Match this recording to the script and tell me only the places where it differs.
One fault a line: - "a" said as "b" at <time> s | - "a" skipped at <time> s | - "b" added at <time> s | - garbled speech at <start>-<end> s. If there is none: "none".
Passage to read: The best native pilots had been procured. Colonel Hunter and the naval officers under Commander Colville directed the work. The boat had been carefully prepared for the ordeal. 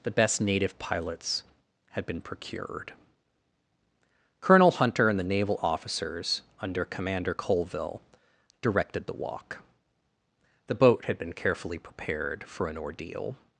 - "work" said as "walk" at 9.1 s
- "the" said as "an" at 12.7 s